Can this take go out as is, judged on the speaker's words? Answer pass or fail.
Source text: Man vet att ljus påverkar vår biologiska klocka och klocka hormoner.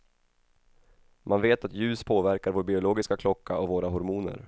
fail